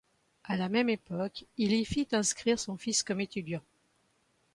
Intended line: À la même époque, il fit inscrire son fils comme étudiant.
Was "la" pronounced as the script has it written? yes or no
yes